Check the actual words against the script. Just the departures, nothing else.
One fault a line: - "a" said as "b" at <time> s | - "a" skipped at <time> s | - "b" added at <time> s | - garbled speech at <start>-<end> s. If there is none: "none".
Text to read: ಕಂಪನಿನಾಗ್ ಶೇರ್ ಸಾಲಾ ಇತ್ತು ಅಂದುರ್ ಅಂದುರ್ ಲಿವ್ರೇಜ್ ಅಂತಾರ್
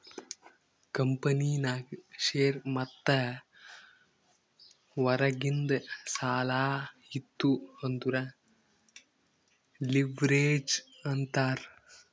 - "ಮತ್ತ ಹೊರಗಿಂದ್" added at 2.7 s
- "ಅಂದುರ್" skipped at 8.2 s